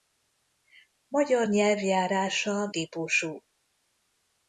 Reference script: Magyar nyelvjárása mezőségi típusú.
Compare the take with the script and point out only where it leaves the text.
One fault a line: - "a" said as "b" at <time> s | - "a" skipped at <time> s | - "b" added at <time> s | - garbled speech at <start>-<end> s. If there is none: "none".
- "mezőségi" skipped at 2.7 s